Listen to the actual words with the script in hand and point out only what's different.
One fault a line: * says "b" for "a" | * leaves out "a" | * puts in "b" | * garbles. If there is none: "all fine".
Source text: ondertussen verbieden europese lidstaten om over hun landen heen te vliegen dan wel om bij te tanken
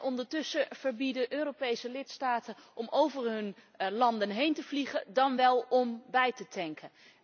all fine